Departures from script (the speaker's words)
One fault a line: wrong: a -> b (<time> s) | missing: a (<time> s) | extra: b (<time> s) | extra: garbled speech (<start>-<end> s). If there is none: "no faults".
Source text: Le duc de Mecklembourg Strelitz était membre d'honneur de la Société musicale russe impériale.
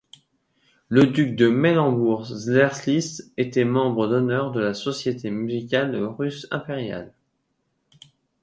no faults